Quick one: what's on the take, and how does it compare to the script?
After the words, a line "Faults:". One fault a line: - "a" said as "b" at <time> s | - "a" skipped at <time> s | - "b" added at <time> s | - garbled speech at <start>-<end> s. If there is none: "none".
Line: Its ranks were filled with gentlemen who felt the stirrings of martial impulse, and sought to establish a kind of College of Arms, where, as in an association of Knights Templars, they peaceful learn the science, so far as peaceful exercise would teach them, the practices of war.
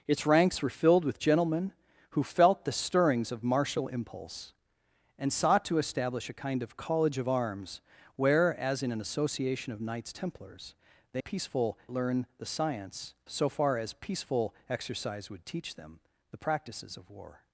Its ranks were filled with gentlemen who felt the stirrings of martial impulse, and sought to establish a kind of College of Arms, where, as in an association of Knights Templars, they peaceful learn the science, so far as peaceful exercise would teach them, the practices of war.
Faults:
none